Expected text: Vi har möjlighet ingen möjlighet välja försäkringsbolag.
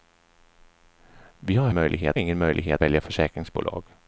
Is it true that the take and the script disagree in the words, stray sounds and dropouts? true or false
false